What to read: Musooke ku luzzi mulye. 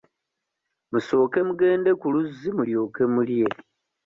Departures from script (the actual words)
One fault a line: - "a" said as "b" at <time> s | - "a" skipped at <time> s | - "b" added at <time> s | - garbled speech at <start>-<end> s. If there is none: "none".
- "mugende" added at 1.5 s
- "mulyoke" added at 2.6 s